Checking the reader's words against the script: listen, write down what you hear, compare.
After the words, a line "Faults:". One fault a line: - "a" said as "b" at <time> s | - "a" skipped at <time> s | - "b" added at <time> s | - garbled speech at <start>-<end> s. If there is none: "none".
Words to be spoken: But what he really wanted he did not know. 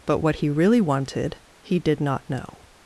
But what he really wanted he did not know.
Faults:
none